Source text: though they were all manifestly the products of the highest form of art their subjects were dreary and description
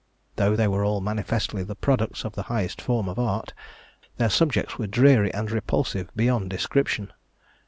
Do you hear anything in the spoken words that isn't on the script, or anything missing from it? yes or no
yes